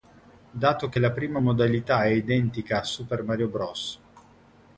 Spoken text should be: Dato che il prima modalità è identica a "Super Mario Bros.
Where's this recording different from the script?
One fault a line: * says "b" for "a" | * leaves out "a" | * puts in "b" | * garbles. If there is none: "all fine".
* says "la" for "il"